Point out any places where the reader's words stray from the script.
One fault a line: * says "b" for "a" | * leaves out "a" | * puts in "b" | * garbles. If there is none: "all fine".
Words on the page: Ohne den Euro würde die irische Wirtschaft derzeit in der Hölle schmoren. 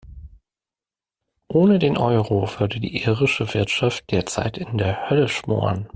all fine